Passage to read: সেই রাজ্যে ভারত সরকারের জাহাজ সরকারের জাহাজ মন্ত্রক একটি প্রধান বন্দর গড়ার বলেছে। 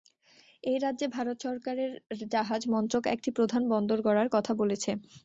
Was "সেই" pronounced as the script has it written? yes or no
no